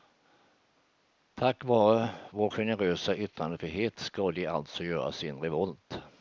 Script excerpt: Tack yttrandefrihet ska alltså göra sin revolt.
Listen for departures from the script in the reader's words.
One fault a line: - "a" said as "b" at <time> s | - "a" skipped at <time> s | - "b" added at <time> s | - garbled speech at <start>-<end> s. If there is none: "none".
- "vare vår generösa" added at 1.6 s
- "de" added at 4.3 s